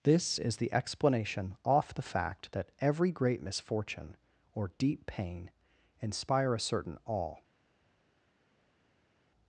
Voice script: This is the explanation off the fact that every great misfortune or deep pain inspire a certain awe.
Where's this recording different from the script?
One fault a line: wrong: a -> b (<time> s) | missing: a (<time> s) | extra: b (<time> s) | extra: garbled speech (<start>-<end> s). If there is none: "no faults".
no faults